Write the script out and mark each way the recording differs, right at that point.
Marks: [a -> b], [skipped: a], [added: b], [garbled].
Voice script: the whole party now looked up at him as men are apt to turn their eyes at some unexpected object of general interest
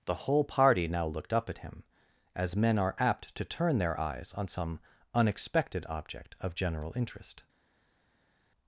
the whole party now looked up at him as men are apt to turn their eyes [at -> on] some unexpected object of general interest